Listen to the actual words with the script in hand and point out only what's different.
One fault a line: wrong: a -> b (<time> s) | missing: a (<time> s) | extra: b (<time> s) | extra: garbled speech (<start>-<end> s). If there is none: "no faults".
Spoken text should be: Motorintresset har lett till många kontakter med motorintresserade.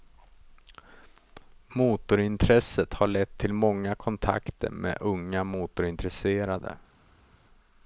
extra: unga (5.0 s)